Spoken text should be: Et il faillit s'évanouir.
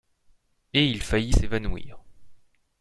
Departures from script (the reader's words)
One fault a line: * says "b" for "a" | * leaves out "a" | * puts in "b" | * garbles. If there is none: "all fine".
all fine